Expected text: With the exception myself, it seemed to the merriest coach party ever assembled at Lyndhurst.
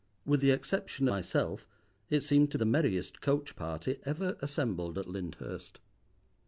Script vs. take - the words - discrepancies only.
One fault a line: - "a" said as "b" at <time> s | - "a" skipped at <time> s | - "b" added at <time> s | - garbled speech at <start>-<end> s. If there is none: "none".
none